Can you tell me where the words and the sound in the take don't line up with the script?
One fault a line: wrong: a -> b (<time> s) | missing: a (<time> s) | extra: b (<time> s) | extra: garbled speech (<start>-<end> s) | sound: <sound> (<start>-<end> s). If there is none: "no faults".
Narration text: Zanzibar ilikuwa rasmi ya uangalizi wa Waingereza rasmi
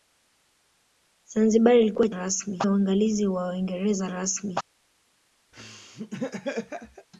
sound: laugh (5.5-7.1 s)